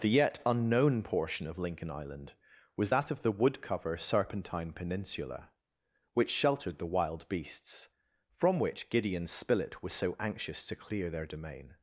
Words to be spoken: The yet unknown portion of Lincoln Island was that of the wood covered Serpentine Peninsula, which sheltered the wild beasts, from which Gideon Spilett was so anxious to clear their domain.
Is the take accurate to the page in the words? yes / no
no